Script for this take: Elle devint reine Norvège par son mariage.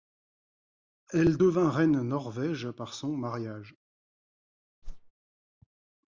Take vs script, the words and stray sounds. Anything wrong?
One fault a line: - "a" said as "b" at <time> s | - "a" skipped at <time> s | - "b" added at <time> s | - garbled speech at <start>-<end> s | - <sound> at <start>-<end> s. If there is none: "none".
- whoosh at 4.8-5.1 s